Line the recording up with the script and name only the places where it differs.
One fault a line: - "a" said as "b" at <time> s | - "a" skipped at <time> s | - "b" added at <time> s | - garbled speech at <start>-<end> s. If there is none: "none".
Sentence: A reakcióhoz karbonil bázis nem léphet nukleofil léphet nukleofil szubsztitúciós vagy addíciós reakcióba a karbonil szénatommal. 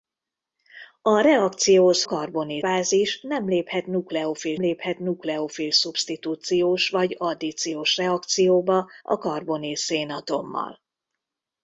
none